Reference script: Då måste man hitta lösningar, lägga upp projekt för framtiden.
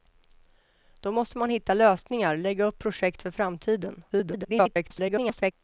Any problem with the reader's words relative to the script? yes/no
yes